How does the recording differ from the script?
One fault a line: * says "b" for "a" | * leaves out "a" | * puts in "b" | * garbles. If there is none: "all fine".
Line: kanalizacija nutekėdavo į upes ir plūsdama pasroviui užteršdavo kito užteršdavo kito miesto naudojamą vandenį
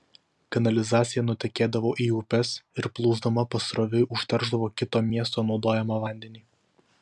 * leaves out "užteršdavo kito"